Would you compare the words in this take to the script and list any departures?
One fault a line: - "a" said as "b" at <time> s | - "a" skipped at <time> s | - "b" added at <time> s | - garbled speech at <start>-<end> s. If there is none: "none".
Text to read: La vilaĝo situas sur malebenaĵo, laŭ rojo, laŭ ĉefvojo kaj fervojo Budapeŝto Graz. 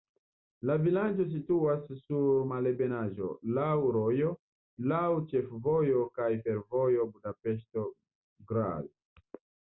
none